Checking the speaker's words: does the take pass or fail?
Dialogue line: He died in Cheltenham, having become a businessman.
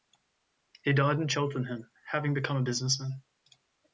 pass